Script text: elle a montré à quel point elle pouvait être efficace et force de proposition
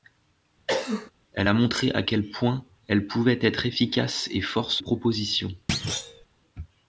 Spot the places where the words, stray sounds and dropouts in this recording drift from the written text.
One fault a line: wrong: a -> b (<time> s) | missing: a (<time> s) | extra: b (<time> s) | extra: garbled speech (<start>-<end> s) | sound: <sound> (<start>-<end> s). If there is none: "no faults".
sound: cough (0.7-1.1 s)
missing: de (4.8 s)
sound: thud (5.7-6.3 s)